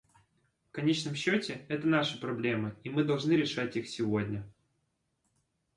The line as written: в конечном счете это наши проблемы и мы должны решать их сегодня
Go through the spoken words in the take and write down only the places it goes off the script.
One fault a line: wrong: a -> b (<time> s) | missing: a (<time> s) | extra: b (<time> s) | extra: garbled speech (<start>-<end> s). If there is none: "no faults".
no faults